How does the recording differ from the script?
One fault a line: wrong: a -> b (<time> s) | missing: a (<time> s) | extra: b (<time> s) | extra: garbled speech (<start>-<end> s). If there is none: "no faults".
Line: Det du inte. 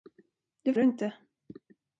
no faults